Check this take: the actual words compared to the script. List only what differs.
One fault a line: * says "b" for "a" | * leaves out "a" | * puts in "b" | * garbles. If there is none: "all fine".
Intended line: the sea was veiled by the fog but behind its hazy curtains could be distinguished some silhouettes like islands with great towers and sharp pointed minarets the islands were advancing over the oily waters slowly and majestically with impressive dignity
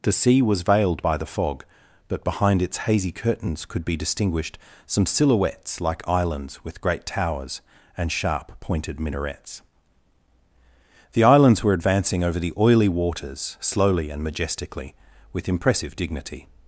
all fine